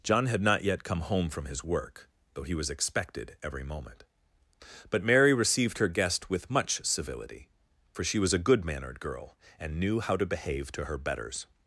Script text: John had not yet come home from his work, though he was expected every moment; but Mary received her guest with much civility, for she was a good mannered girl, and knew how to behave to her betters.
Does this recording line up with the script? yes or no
yes